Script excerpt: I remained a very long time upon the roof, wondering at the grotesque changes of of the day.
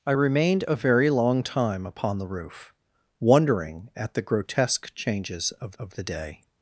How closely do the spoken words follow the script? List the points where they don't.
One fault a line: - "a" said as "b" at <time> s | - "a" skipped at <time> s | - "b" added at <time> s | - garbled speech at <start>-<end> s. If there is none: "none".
none